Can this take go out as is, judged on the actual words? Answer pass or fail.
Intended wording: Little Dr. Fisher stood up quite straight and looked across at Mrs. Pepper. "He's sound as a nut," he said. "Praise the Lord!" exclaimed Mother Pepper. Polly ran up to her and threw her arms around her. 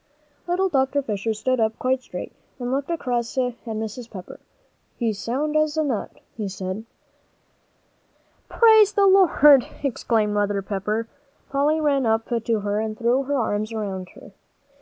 pass